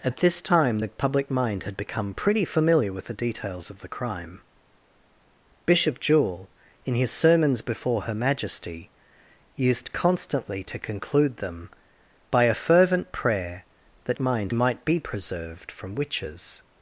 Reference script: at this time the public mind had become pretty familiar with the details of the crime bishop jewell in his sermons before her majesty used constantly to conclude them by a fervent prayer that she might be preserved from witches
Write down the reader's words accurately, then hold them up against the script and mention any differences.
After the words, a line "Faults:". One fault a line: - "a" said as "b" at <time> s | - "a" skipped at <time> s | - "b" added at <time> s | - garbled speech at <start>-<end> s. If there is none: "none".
at this time the public mind had become pretty familiar with the details of the crime bishop jewell in his sermons before her majesty used constantly to conclude them by a fervent prayer that mind might be preserved from witches
Faults:
- "she" said as "mind" at 14.2 s